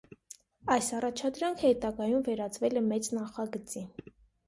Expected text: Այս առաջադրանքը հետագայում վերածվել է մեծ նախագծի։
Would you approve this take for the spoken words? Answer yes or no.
yes